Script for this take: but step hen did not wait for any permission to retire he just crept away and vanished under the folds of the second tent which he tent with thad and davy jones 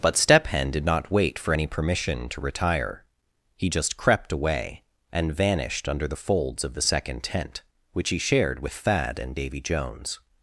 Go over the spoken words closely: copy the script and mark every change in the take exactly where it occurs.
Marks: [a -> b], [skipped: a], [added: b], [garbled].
but step hen did not wait for any permission to retire he just crept away and vanished under the folds of the second tent which he [tent -> shared] with thad and davy jones